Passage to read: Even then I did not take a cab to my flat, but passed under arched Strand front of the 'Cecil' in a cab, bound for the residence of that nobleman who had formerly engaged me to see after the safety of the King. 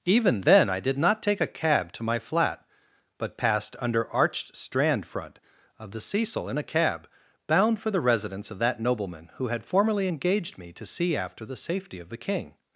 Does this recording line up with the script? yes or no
yes